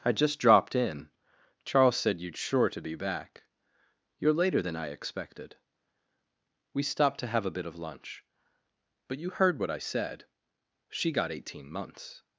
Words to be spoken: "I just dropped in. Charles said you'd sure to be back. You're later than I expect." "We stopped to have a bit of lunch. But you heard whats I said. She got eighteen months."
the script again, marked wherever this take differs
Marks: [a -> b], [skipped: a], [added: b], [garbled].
"I just dropped in. Charles said you'd sure to be back. You're later than I [expect." -> expected] "We stopped to have a bit of lunch. But you heard [whats -> what] I said. She got eighteen months."